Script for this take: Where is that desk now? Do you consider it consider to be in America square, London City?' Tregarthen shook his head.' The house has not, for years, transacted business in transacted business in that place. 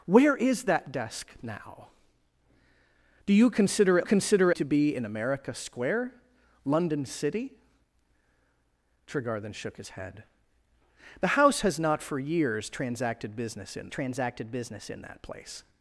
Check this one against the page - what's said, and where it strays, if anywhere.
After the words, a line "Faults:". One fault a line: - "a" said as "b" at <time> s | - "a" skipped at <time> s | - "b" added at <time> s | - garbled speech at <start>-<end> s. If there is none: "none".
Where is that desk now? Do you consider it consider to be in America square, London City?' Tregarthen shook his head.' The house has not, for years, transacted business in transacted business in that place.
Faults:
none